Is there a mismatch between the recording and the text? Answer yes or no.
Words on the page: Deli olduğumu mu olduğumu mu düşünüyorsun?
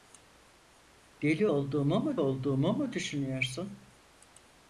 no